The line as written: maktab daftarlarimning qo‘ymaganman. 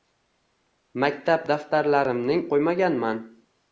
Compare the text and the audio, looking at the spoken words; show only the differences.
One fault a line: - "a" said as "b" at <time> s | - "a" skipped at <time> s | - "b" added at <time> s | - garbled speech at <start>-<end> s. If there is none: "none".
none